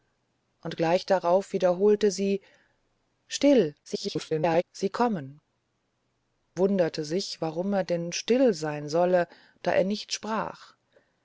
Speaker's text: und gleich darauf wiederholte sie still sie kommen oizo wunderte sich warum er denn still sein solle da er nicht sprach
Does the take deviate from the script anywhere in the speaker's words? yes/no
yes